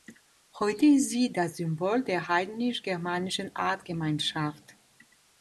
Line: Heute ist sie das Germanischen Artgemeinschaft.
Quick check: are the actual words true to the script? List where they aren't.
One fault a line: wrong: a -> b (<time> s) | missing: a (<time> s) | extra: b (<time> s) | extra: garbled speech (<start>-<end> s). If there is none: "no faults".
extra: Symbol der heidnisch (1.6 s)